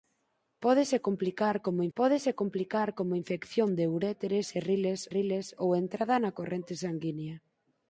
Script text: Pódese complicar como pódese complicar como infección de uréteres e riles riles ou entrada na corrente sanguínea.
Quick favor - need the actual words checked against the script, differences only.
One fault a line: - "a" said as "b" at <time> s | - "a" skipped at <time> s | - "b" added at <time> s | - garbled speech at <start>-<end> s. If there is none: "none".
none